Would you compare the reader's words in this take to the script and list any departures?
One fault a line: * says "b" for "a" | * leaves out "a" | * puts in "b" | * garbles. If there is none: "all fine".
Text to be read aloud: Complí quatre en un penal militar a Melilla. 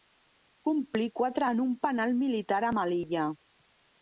all fine